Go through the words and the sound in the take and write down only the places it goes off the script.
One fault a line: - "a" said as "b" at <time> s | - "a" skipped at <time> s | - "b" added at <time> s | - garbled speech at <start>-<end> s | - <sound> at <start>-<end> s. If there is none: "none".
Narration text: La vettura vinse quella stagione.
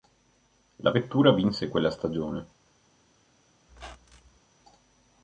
- squeak at 3.7-4.4 s